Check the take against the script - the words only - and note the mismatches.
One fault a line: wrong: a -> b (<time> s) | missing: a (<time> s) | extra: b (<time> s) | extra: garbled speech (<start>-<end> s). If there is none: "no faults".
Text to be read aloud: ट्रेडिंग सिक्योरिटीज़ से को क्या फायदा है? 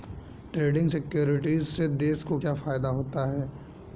extra: देश (2.0 s)
extra: होता (3.0 s)